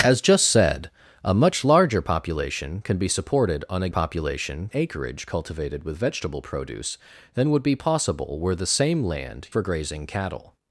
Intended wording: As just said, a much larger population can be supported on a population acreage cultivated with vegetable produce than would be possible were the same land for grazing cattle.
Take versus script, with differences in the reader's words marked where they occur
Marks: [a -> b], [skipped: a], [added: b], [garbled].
As just said, a much larger population can be supported on a population acreage cultivated with vegetable produce than would be possible were the same land for grazing cattle.